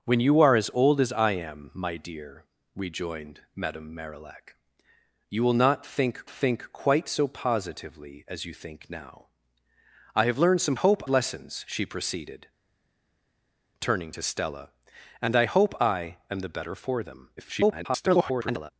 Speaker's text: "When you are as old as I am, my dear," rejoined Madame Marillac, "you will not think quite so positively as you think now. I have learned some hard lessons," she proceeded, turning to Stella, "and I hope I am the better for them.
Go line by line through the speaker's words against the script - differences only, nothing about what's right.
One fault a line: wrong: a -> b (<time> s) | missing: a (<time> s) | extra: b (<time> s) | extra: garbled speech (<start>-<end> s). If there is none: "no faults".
extra: think (6.3 s)
wrong: hard -> hope (10.7 s)
extra: garbled speech (17.4-18.7 s)